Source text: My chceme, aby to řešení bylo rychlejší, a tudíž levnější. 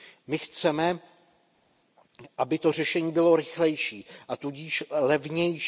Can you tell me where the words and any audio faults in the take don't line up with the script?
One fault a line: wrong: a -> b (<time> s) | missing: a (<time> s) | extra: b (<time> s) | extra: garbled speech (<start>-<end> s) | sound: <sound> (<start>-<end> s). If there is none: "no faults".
no faults